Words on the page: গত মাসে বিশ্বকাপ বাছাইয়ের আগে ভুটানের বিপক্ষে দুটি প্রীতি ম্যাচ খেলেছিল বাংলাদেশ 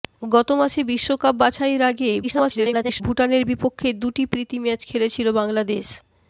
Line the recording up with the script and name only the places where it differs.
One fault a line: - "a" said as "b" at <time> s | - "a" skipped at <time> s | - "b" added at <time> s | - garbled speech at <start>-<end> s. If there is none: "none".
- garbled speech at 2.2-3.0 s